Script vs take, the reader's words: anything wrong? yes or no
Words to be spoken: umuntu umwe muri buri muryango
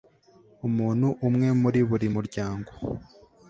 no